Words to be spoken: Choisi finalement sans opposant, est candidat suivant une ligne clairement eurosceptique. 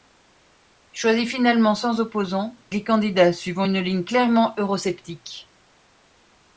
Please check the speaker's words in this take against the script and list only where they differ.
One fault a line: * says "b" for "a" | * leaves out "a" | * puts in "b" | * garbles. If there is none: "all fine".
all fine